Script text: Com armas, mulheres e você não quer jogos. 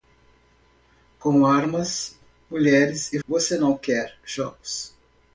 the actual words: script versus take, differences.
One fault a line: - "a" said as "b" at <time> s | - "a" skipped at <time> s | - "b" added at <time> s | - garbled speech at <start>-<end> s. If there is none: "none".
none